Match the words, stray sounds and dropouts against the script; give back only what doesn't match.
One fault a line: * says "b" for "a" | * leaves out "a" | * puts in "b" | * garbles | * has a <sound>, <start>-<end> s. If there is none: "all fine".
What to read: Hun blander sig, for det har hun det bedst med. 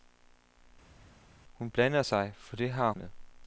* leaves out "hun det bedst"